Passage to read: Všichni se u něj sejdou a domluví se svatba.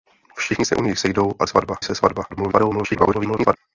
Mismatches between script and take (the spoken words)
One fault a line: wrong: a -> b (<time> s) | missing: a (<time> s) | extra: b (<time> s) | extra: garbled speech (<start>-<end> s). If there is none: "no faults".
wrong: domluví -> svatba (1.5 s)
extra: garbled speech (2.3-3.6 s)